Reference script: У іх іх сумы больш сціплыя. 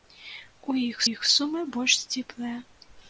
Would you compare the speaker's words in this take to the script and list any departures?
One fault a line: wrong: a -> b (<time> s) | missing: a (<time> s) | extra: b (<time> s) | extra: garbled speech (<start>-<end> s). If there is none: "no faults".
no faults